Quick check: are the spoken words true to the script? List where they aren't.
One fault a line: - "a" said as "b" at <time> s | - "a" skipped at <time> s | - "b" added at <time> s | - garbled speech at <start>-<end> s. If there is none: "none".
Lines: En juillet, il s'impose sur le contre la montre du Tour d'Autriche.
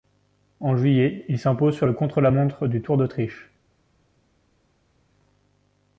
none